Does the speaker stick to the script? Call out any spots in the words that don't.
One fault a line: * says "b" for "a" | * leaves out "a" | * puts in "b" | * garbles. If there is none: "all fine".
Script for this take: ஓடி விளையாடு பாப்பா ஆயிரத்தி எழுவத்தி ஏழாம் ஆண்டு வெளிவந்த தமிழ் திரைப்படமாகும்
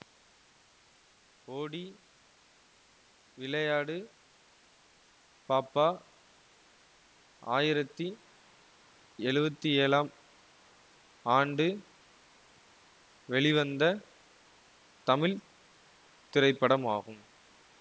all fine